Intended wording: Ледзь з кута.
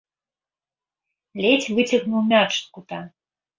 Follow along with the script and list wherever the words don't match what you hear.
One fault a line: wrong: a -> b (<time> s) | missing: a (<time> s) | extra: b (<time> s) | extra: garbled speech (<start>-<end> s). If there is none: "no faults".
extra: выцягнуў мяч (1.8 s)